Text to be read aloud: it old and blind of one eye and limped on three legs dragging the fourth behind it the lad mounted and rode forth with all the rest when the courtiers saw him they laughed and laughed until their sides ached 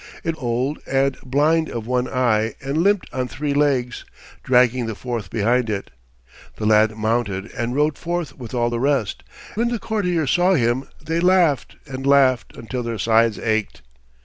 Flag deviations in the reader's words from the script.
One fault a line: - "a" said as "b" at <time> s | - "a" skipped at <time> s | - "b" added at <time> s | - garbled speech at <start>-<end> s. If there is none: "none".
none